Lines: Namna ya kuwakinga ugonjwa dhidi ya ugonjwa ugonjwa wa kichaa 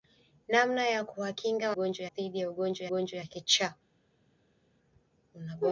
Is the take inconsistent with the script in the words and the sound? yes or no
no